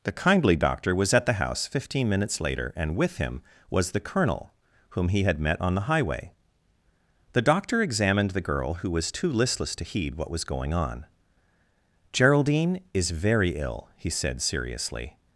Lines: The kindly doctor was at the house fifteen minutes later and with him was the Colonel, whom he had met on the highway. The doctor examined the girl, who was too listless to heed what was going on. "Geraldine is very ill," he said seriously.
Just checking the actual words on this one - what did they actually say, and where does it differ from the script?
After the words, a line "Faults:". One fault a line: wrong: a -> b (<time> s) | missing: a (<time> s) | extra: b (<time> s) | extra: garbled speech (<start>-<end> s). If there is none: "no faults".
The kindly doctor was at the house fifteen minutes later and with him was the Colonel, whom he had met on the highway. The doctor examined the girl, who was too listless to heed what was going on. "Geraldine is very ill," he said seriously.
Faults:
no faults